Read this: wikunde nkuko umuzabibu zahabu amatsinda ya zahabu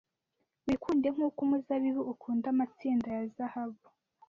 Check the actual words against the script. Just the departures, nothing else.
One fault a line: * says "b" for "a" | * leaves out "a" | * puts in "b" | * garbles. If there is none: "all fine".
* says "ukunda" for "zahabu"